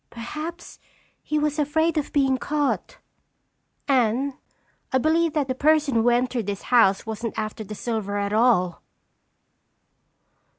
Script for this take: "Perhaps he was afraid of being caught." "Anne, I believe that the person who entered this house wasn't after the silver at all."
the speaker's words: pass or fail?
pass